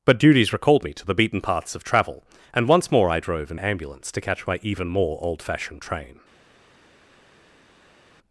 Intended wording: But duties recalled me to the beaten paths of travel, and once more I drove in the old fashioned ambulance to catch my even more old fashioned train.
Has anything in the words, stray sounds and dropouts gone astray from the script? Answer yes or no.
yes